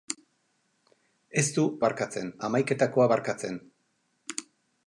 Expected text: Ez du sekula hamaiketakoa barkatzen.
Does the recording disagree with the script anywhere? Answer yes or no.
yes